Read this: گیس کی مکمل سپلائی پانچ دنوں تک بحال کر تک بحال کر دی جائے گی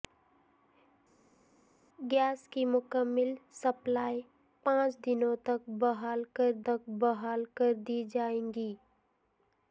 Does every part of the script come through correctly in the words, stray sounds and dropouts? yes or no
yes